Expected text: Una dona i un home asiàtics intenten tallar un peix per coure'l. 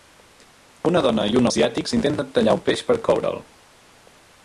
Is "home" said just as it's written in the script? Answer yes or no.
no